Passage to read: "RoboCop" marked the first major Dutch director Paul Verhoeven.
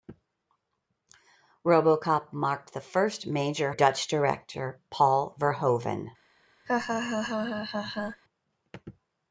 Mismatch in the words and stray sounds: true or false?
true